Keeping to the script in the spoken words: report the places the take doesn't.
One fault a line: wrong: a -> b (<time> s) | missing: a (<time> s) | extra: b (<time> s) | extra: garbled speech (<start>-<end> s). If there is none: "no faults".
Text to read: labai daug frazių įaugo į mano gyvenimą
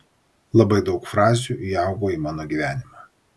no faults